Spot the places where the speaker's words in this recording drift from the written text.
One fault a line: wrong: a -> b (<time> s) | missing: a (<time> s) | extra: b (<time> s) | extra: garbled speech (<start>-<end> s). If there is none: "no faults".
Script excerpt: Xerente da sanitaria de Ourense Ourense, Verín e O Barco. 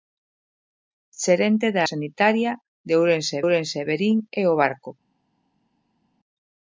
no faults